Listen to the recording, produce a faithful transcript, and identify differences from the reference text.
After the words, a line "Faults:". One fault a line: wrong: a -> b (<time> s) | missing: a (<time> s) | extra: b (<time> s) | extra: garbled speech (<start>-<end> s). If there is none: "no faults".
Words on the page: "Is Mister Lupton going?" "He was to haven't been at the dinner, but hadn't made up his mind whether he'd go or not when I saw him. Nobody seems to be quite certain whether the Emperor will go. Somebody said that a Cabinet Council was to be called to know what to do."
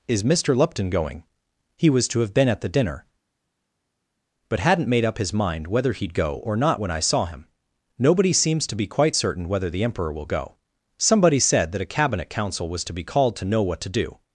"Is Mister Lupton going?" "He was to have been at the dinner, but hadn't made up his mind whether he'd go or not when I saw him. Nobody seems to be quite certain whether the Emperor will go. Somebody said that a Cabinet Council was to be called to know what to do."
Faults:
wrong: haven't -> have (2.2 s)